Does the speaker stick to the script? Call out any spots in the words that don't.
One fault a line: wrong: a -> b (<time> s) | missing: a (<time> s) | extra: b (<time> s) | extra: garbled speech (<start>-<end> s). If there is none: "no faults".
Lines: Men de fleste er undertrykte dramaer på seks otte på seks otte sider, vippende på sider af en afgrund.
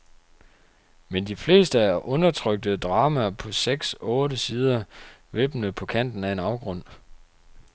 missing: på seks otte (4.4 s)
wrong: sider -> kanten (5.8 s)